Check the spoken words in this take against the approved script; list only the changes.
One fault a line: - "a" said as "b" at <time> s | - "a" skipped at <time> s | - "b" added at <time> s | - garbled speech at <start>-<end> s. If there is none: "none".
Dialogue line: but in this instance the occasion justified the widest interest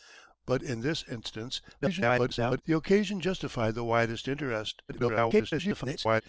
- garbled speech at 1.8-2.6 s
- garbled speech at 4.9-6.2 s